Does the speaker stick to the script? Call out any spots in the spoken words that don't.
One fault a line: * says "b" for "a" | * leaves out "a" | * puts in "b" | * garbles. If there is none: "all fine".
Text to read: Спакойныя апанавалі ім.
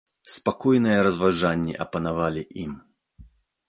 * puts in "разважанні"